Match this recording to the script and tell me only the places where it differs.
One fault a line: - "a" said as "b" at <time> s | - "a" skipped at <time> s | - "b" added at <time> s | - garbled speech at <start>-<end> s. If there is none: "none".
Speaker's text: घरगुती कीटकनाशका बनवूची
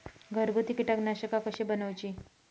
- "कशी" added at 1.5 s